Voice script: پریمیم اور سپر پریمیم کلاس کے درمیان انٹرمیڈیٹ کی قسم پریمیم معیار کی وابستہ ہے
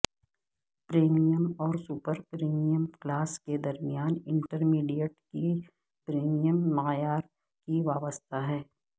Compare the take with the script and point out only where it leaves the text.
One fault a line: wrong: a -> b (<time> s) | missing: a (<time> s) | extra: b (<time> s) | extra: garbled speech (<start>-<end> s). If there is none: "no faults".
missing: قسم (5.5 s)